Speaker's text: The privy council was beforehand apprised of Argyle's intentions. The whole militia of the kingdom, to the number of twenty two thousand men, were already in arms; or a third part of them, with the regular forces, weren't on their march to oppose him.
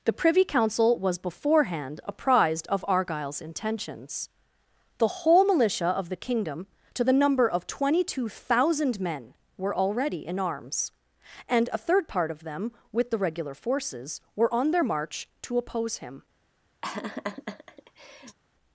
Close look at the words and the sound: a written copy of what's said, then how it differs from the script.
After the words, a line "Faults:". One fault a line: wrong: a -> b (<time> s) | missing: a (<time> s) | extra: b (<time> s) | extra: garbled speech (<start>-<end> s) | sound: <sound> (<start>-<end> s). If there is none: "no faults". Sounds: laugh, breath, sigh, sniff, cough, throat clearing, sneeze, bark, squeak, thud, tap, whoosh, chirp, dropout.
The privy council was beforehand apprised of Argyle's intentions. The whole militia of the kingdom, to the number of twenty two thousand men, were already in arms; and a third part of them, with the regular forces, were on their march to oppose him.
Faults:
wrong: or -> and (11.5 s)
wrong: weren't -> were (14.3 s)
sound: laugh (16.8-18.4 s)